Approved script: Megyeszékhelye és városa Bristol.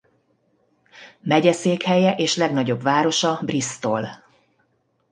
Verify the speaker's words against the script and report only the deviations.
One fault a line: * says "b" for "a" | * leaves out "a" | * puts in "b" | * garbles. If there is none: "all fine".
* puts in "legnagyobb"